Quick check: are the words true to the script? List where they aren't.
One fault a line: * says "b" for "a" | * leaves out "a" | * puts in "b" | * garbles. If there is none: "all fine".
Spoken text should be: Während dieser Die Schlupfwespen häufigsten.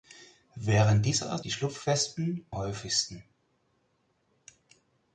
all fine